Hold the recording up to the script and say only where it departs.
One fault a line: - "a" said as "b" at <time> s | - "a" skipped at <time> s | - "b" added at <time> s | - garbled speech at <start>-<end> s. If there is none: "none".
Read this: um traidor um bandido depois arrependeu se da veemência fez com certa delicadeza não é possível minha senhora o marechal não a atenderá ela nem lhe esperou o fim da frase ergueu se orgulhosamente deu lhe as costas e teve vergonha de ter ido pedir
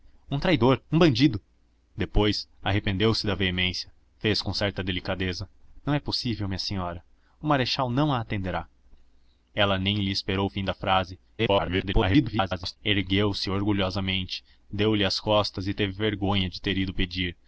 - garbled speech at 11.4-12.8 s